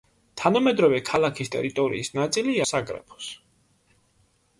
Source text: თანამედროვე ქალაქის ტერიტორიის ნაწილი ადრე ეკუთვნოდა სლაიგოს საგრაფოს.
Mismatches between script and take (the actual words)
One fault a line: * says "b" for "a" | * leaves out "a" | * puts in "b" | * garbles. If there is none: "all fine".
* leaves out "ადრე ეკუთვნოდა სლაიგოს"